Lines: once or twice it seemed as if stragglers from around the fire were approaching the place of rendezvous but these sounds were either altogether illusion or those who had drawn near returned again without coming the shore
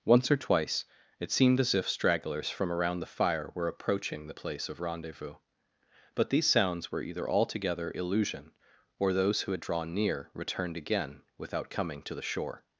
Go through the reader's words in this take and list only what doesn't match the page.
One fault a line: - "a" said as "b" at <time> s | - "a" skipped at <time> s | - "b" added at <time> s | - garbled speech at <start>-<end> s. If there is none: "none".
- "to" added at 12.0 s